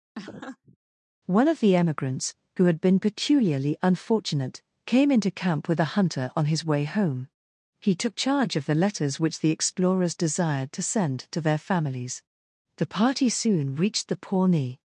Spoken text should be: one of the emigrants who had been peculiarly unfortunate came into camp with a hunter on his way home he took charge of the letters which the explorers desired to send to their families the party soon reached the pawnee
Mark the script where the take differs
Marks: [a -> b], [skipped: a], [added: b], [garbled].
one of the emigrants who had been peculiarly unfortunate came into camp with a hunter on his way home he took charge of the letters which the explorers desired to send to their families the party soon reached the pawnee